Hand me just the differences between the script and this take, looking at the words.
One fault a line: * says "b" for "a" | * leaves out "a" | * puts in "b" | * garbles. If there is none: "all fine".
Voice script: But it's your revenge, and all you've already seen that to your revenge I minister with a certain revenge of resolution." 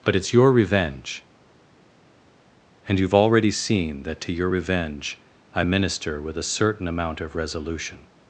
* leaves out "all"
* says "amount" for "revenge"